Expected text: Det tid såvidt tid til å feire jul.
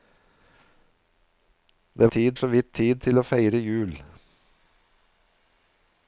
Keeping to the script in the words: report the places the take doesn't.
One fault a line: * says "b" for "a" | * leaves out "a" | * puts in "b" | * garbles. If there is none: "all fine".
all fine